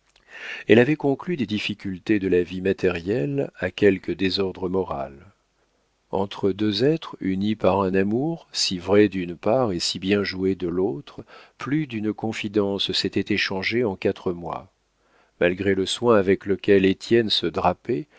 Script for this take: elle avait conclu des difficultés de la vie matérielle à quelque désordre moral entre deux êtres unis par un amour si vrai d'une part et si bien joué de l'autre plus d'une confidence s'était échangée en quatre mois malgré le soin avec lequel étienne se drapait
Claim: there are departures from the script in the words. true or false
false